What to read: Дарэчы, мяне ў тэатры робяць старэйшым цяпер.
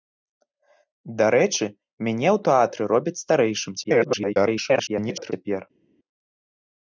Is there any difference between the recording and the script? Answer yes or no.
yes